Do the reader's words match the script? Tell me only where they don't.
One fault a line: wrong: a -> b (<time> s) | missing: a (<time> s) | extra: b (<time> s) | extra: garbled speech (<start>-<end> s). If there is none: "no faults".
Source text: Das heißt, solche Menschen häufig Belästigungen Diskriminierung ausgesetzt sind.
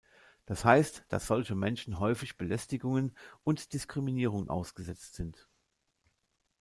extra: dass (1.1 s)
extra: und (3.4 s)